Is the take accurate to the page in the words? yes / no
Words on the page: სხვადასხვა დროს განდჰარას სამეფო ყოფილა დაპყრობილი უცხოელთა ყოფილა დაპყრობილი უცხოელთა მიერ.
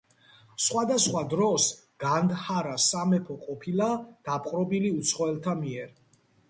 no